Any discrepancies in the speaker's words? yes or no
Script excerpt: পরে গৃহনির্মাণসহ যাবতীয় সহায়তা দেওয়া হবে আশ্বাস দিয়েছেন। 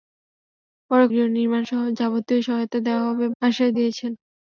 no